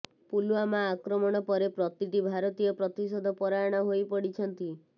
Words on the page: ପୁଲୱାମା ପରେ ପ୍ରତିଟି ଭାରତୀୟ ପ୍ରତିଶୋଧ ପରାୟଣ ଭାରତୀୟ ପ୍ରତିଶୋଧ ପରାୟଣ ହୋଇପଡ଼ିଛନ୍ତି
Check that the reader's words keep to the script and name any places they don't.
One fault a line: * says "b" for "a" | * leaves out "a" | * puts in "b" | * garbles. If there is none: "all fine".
* puts in "ଆକ୍ରମଣ"
* leaves out "ଭାରତୀୟ ପ୍ରତିଶୋଧ ପରାୟଣ"